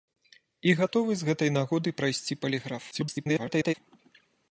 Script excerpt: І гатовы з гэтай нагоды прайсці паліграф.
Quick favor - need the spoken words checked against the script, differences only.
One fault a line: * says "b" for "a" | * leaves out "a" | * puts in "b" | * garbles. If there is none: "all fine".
* garbles